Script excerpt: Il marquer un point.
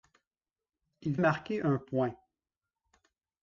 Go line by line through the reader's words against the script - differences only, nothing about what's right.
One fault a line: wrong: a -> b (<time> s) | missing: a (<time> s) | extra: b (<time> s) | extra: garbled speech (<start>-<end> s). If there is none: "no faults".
no faults